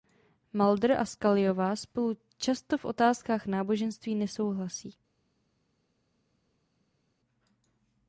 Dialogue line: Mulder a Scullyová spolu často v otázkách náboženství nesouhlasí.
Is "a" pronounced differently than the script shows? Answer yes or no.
no